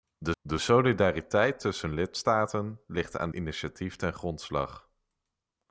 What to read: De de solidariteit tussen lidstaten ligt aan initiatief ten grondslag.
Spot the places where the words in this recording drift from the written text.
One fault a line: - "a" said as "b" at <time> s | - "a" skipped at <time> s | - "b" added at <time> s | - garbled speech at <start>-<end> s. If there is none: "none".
none